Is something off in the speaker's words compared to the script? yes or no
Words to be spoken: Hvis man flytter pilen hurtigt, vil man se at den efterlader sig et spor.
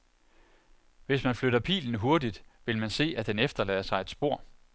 no